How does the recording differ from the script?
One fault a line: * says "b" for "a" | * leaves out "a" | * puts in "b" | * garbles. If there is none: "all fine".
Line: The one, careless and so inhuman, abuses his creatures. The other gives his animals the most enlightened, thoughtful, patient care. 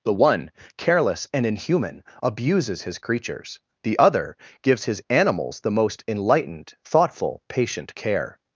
* leaves out "so"